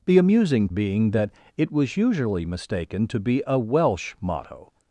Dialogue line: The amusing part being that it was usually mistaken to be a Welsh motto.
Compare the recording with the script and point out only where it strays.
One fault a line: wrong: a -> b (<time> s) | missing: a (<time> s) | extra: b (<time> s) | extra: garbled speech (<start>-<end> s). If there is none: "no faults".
missing: part (0.7 s)